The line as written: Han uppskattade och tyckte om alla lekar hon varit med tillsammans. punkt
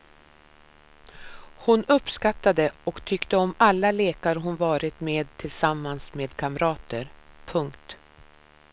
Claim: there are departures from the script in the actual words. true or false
true